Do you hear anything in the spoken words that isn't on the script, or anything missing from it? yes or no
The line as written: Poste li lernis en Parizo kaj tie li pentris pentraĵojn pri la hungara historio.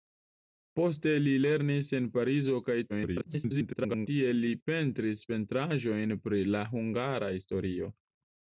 yes